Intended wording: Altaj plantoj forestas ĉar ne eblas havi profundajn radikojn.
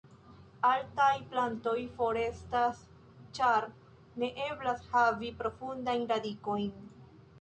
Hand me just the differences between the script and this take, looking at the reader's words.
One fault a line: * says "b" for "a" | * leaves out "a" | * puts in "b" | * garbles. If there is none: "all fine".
all fine